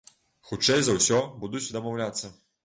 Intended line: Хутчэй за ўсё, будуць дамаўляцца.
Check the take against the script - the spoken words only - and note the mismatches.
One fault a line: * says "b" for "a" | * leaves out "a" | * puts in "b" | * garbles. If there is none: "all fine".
all fine